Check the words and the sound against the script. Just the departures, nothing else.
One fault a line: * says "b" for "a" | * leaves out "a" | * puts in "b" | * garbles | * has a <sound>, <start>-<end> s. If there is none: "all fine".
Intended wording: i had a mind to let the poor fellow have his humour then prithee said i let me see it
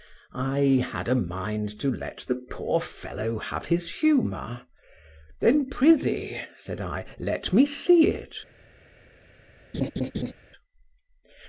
* has a laugh, 9.7-10.3 s